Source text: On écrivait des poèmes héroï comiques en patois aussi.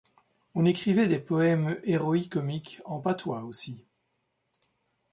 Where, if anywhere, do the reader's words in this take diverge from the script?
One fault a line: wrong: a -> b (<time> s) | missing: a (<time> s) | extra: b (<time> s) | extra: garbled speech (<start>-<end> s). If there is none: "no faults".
no faults